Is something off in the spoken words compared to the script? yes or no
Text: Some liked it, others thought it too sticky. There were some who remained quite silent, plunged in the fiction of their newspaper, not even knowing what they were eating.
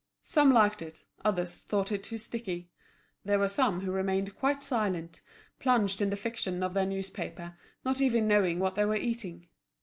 no